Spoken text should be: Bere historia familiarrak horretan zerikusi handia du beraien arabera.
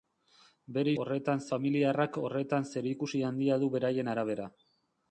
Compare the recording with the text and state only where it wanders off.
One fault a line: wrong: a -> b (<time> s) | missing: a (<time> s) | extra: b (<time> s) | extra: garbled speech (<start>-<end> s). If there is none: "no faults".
wrong: historia -> horretan (1.0 s)